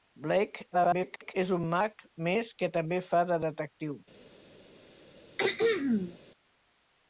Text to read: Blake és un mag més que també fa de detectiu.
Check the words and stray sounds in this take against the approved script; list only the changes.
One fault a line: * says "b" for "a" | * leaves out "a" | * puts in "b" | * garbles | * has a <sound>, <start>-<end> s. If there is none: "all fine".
* garbles
* has a throat clearing, 5.4-6.2 s